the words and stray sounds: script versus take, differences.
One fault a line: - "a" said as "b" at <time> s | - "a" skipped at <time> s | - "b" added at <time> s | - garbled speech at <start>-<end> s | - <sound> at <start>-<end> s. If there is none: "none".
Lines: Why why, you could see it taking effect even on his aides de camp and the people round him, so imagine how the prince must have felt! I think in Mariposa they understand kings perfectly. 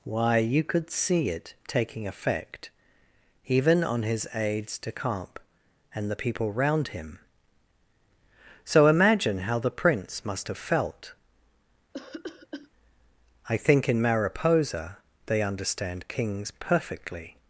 - "why" skipped at 0.4 s
- cough at 11.9-12.7 s